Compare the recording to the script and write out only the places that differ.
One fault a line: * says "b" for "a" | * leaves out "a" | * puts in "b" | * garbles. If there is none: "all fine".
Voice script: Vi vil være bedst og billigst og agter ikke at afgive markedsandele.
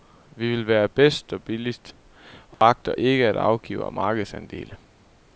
all fine